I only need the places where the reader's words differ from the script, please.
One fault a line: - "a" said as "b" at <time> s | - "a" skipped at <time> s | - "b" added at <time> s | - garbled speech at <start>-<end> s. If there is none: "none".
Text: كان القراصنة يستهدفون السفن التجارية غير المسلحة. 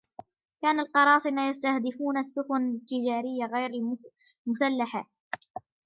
none